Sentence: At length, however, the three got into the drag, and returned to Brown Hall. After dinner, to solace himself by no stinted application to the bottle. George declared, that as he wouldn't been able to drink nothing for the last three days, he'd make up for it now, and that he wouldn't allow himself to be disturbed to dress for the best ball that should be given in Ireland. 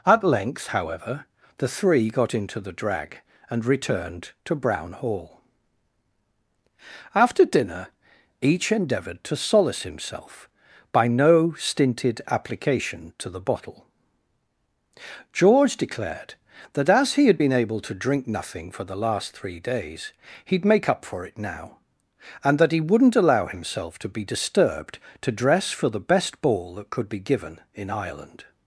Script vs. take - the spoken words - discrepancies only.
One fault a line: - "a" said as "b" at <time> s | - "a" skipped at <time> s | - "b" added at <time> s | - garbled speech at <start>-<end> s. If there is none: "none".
- "each endeavoured" added at 8.4 s
- "wouldn't" said as "had" at 17.2 s
- "should" said as "could" at 26.9 s